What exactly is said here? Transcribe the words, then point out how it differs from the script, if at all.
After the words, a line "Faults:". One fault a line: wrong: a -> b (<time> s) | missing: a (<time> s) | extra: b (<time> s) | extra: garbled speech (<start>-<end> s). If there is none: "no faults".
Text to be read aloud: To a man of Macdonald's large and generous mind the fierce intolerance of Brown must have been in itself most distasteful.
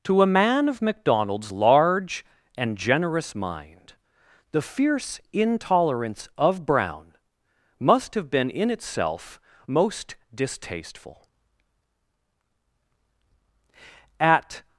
To a man of Macdonald's large and generous mind the fierce intolerance of Brown must have been in itself most distasteful. At
Faults:
extra: At (14.2 s)